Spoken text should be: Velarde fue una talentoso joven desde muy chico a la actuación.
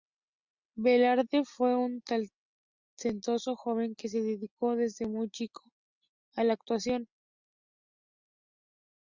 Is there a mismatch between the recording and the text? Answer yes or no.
yes